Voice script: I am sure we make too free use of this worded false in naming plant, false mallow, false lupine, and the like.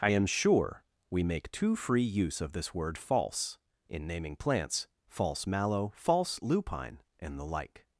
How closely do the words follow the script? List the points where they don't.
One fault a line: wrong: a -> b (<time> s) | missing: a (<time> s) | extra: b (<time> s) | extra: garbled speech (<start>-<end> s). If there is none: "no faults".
wrong: worded -> word (2.7 s)
wrong: plant -> plants (4.4 s)